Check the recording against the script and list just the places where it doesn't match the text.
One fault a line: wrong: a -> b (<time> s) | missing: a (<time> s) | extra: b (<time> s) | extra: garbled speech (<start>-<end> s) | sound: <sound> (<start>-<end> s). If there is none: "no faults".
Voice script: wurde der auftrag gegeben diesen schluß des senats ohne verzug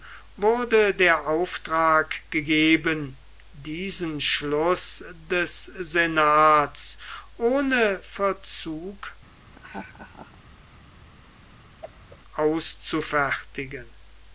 sound: laugh (9.5-10.4 s)
sound: whoosh (11.8-12.2 s)